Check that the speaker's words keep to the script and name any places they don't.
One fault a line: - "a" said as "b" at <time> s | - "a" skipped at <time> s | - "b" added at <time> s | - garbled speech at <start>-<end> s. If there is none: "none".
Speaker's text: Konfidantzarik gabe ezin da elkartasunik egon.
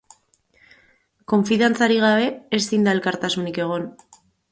none